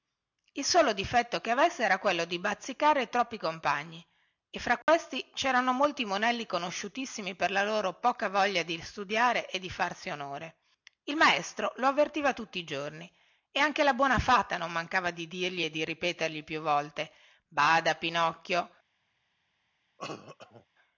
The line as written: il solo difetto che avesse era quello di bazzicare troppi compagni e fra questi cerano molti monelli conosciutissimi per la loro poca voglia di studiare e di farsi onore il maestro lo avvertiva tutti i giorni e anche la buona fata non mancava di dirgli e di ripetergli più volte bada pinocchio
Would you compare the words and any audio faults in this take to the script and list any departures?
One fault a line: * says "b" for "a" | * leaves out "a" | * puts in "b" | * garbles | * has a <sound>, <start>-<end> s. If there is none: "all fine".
* has a dropout, 4.8-4.9 s
* has a cough, 20.0-20.7 s